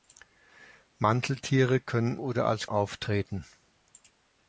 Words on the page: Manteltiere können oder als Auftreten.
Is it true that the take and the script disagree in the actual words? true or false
false